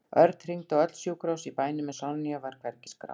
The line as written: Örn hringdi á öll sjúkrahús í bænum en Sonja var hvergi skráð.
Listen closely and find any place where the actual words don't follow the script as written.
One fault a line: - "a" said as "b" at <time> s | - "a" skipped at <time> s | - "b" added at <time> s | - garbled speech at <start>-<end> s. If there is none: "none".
none